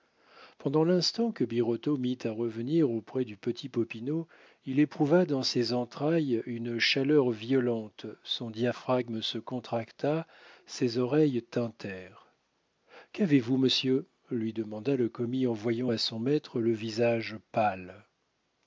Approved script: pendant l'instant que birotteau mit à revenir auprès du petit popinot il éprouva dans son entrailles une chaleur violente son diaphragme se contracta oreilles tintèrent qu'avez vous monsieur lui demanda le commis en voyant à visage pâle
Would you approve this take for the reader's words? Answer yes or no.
no